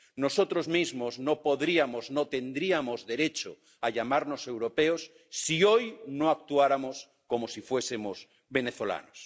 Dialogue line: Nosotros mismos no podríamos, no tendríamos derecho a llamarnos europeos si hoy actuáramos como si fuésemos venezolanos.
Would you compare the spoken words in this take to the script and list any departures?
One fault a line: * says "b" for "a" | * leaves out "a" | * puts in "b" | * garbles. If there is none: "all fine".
* puts in "no"